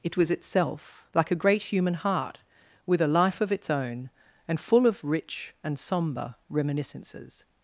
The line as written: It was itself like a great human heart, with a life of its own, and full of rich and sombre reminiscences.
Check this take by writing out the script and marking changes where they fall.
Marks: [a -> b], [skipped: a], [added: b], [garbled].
It was itself like a great human heart, with a life of its own, and full of rich and sombre reminiscences.